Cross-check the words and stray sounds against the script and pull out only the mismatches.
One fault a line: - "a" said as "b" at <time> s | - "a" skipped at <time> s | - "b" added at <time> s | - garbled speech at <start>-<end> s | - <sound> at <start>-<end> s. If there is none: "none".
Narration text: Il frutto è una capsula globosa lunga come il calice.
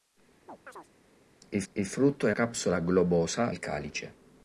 - chirp at 0.5-0.9 s
- "il" added at 1.7 s
- "una" skipped at 2.3 s
- "lunga come" skipped at 3.5 s